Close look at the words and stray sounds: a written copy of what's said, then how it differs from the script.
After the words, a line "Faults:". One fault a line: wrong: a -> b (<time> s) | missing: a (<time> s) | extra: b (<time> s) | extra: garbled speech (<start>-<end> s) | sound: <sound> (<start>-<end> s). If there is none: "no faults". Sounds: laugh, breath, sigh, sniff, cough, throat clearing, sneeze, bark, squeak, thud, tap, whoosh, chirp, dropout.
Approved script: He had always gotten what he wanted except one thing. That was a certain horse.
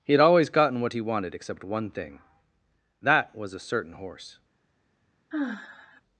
He had always gotten what he wanted except one thing. That was a certain horse.
Faults:
sound: sigh (5.3-6.0 s)